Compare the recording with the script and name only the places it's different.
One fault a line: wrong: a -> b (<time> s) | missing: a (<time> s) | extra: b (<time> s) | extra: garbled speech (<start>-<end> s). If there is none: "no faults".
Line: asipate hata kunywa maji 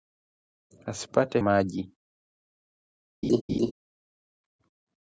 missing: hata kunywa (1.4 s)